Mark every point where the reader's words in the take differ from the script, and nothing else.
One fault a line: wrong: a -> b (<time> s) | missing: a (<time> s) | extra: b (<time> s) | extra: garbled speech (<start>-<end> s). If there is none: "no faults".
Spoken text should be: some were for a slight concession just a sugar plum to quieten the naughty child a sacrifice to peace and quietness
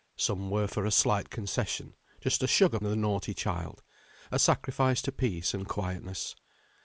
missing: plum to quieten (2.8 s)